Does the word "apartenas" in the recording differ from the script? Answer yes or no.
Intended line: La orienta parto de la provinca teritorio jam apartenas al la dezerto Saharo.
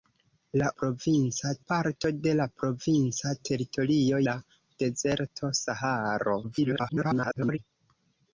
yes